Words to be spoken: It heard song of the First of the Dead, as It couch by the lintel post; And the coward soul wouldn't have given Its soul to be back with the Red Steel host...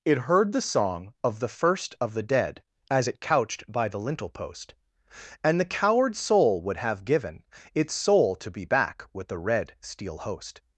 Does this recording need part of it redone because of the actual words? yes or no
yes